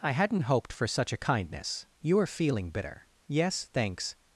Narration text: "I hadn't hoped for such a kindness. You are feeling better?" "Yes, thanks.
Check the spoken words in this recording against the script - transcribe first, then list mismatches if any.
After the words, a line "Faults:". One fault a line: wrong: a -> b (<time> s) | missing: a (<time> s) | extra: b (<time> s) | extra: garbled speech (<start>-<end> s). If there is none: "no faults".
"I hadn't hoped for such a kindness. You are feeling bitter?" "Yes, thanks.
Faults:
wrong: better -> bitter (2.7 s)